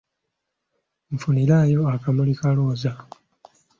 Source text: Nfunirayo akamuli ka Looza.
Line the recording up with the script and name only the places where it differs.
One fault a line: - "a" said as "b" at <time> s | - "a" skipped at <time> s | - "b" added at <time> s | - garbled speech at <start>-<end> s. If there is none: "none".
none